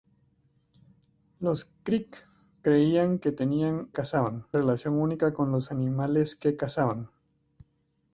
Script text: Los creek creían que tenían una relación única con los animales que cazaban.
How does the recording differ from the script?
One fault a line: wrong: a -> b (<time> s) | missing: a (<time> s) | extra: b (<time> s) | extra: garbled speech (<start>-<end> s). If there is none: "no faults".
wrong: una -> cazaban (3.9 s)